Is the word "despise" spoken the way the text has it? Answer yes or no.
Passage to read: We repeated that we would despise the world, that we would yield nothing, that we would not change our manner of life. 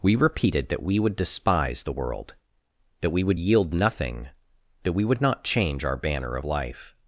yes